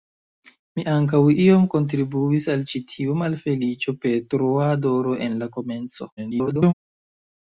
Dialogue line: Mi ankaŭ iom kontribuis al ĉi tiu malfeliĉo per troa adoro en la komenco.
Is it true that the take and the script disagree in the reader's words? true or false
true